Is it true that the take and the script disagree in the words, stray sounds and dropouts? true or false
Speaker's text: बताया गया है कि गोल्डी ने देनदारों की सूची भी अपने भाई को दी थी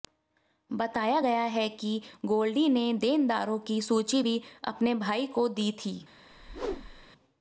true